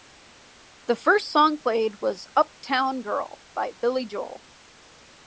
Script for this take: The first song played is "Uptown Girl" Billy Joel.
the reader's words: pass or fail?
fail